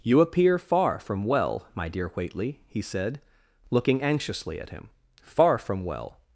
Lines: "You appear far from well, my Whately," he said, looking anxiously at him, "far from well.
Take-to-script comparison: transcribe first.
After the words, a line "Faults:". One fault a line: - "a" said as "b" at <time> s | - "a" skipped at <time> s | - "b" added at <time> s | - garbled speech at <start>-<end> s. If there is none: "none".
"You appear far from well, my dear Whately," he said, looking anxiously at him, "far from well.
Faults:
- "dear" added at 1.9 s